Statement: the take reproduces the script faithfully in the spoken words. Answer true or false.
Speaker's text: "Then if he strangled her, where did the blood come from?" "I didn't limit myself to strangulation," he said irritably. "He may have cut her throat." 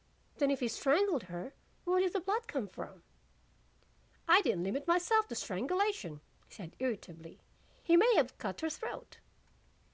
true